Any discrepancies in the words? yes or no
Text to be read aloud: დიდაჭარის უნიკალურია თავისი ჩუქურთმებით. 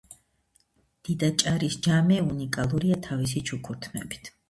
yes